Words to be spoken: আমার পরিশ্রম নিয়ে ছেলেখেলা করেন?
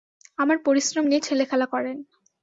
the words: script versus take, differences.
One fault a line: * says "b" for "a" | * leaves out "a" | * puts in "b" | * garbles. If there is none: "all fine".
all fine